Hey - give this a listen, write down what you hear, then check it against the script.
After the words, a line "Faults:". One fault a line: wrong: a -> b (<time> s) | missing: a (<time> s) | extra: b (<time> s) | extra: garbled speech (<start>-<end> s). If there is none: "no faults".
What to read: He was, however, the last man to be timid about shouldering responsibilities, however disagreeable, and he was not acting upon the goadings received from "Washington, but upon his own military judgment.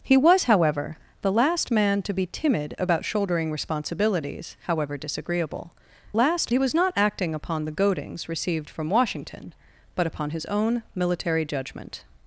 He was, however, the last man to be timid about shouldering responsibilities, however disagreeable, last he was not acting upon the goadings received from "Washington, but upon his own military judgment.
Faults:
wrong: and -> last (6.1 s)